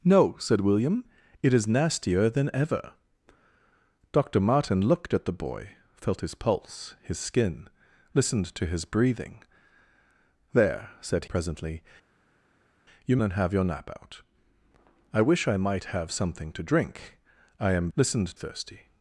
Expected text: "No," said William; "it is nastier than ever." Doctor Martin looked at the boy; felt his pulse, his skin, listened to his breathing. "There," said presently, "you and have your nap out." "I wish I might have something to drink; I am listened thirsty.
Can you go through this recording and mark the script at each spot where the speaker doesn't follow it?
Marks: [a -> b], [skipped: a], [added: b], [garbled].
"No," said William; "it is nastier than ever." Doctor Martin looked at the boy; felt his pulse, his skin, listened to his breathing. "There," said presently, "you and have your nap out." "I wish I might have something to drink; I am listened thirsty.